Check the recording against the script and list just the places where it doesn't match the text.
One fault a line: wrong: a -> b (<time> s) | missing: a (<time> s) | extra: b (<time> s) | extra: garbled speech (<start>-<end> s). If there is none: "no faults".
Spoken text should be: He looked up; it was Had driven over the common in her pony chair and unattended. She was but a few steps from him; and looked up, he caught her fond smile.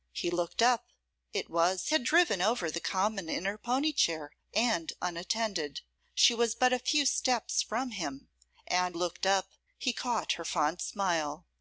no faults